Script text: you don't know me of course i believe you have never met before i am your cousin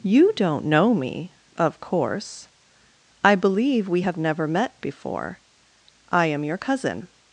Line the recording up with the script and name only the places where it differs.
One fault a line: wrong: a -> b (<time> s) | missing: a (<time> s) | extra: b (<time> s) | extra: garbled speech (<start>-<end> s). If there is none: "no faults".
wrong: you -> we (3.9 s)